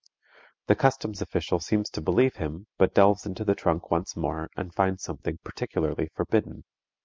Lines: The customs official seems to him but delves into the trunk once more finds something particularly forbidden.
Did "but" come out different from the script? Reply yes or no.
no